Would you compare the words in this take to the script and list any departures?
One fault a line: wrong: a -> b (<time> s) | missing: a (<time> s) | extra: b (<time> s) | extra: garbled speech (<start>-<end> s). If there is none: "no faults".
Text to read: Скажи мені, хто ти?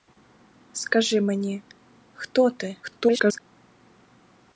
extra: garbled speech (2.8-3.4 s)